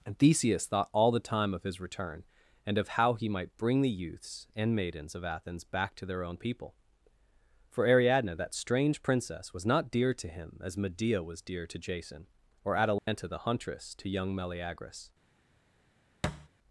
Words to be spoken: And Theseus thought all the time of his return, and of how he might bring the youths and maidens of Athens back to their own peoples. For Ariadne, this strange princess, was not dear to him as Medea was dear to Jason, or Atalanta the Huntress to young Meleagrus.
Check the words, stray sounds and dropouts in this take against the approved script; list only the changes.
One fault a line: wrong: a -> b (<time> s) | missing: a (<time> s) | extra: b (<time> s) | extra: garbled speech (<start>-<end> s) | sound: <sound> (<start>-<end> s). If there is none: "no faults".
wrong: peoples -> people (6.4 s)
wrong: this -> that (8.3 s)
sound: dropout (13.0-13.1 s)
sound: thud (16.2-16.5 s)